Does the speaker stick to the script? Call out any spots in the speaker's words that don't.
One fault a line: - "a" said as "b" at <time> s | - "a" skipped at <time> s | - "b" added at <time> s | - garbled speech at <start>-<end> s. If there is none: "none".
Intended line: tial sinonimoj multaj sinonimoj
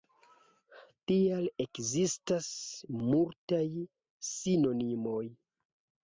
- "sinonimoj" said as "ekzistas" at 1.6 s